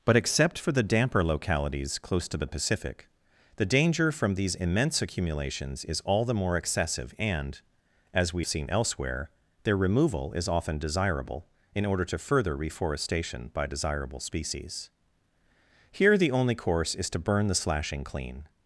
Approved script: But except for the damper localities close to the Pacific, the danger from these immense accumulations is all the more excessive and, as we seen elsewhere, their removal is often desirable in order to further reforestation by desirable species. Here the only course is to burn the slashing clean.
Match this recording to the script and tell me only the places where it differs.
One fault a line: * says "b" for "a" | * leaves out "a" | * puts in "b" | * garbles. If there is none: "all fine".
all fine